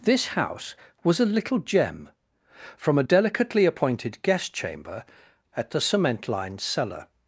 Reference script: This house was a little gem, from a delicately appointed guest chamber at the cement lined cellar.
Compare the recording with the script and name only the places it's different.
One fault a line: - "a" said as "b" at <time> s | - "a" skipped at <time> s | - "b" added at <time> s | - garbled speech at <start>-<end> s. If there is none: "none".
none